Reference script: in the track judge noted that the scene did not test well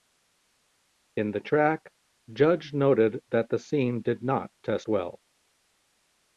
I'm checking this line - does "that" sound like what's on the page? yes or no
yes